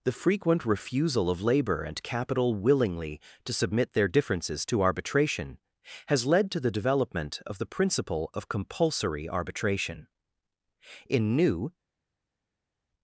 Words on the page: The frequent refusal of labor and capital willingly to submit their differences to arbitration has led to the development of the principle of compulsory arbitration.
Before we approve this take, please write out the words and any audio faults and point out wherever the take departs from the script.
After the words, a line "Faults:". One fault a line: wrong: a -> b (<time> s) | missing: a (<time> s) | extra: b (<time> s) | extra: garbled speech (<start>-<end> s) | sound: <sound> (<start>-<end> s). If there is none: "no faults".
The frequent refusal of labor and capital willingly to submit their differences to arbitration has led to the development of the principle of compulsory arbitration. In New
Faults:
extra: In New (11.1 s)